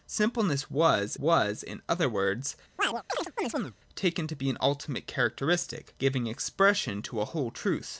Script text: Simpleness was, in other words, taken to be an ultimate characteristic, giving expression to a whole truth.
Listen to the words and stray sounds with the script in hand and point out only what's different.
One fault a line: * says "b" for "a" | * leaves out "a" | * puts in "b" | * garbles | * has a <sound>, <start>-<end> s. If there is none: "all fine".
* puts in "was"
* has a chirp, 2.8-3.8 s